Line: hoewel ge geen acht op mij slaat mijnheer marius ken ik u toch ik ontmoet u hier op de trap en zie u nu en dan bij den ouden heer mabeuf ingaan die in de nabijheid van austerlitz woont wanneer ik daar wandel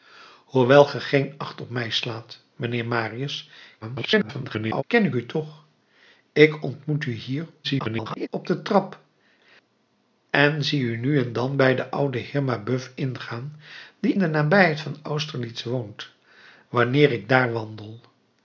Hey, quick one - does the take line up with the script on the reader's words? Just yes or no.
no